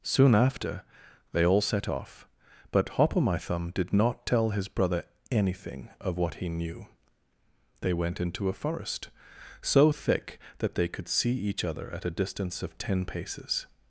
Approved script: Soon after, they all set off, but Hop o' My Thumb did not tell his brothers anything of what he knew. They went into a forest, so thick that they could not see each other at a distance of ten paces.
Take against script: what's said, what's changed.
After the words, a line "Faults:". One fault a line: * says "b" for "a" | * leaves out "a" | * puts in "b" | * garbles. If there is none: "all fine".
Soon after, they all set off, but Hop o' My Thumb did not tell his brother anything of what he knew. They went into a forest, so thick that they could see each other at a distance of ten paces.
Faults:
* says "brother" for "brothers"
* leaves out "not"